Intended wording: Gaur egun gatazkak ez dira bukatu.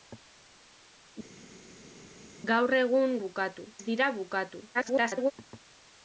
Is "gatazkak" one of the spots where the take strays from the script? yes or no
yes